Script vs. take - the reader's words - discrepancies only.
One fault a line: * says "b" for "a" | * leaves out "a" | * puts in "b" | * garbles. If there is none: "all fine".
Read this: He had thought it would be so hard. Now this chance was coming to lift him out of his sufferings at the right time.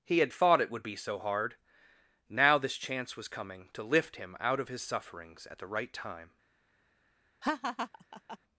all fine